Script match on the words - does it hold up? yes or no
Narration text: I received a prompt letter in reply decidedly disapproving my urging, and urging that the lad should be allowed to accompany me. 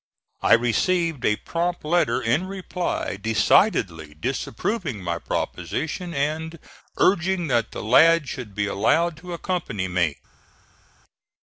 no